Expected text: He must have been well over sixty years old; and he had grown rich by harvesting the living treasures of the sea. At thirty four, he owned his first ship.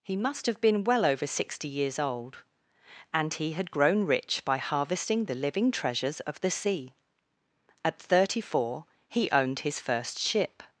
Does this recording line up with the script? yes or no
yes